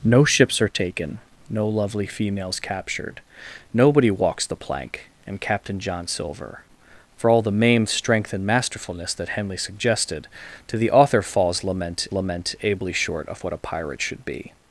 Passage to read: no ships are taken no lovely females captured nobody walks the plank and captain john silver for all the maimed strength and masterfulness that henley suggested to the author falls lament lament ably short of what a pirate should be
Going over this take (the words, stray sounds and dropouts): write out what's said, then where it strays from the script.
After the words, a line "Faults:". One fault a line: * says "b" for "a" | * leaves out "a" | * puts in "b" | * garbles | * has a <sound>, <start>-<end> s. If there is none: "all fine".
no ships are taken no lovely females captured nobody walks the plank and captain john silver for all the maimed strength and masterfulness that henley suggested to the author falls lament lament ably short of what a pirate should be
Faults:
all fine